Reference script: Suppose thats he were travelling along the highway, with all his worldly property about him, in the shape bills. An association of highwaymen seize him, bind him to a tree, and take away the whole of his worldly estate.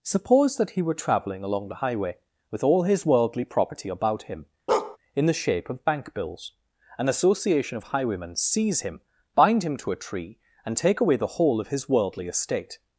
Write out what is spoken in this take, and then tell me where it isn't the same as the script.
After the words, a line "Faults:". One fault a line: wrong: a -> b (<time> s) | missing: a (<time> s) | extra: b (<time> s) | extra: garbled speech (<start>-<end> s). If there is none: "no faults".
Suppose that he were travelling along the highway, with all his worldly property about him, in the shape of bank bills. An association of highwaymen seize him, bind him to a tree, and take away the whole of his worldly estate.
Faults:
wrong: thats -> that (0.6 s)
extra: of bank (5.7 s)